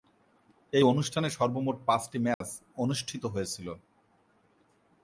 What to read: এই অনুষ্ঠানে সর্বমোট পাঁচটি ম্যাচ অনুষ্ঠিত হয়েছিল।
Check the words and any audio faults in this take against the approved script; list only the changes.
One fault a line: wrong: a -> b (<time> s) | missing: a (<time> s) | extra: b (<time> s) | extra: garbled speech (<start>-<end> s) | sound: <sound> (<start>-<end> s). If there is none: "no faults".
sound: dropout (2.3-2.4 s)